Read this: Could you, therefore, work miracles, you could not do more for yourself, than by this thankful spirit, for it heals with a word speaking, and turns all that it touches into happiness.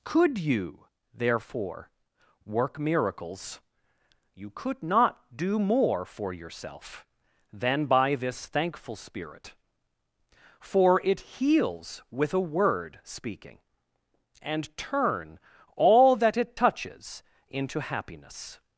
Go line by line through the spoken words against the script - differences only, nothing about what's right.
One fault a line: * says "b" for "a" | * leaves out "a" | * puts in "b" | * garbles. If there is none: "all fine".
* says "turn" for "turns"